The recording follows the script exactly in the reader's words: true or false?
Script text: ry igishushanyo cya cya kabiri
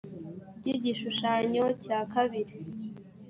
false